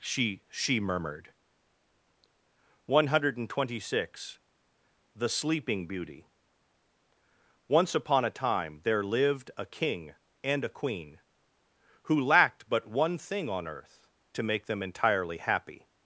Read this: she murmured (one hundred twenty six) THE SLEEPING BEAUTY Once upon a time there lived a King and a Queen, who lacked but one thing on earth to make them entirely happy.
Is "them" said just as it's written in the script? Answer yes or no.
yes